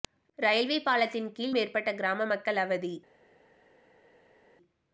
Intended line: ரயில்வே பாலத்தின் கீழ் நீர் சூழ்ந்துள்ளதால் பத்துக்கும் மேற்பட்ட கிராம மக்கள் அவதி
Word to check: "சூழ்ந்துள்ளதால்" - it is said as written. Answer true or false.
false